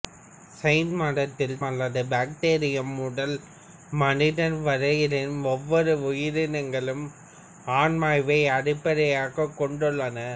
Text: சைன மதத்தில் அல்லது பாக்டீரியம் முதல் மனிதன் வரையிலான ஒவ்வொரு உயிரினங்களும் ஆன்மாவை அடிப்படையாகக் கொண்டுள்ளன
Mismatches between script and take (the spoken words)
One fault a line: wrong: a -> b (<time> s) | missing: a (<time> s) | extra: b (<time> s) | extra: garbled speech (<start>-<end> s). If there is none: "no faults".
no faults